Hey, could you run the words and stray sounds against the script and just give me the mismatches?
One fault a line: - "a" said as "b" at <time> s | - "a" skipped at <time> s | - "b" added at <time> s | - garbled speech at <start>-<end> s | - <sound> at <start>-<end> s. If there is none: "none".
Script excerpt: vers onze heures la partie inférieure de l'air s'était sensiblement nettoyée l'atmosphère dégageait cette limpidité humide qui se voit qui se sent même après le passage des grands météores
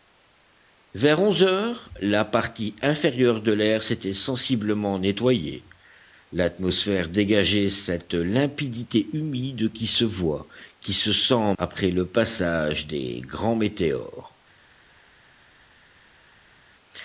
- "même" skipped at 11.5 s